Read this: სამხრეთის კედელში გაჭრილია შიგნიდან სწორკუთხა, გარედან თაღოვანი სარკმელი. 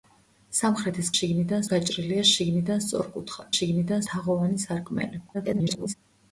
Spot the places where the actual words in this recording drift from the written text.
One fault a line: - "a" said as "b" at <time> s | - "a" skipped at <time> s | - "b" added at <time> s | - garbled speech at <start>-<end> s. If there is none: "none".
- "კედელში" said as "შიგნიდან" at 1.1 s
- "გარედან" said as "შიგნიდან" at 3.5 s
- garbled speech at 5.3-5.9 s